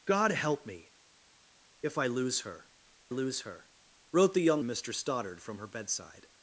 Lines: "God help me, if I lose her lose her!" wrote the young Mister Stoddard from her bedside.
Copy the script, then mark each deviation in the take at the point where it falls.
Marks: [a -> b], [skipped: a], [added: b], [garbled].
"God help me, if I lose her lose her!" wrote the young Mister Stoddard from her bedside.